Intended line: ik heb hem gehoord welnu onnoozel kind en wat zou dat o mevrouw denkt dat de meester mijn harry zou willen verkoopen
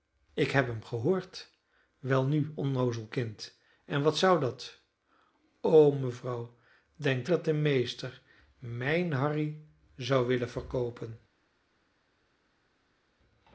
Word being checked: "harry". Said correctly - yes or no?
yes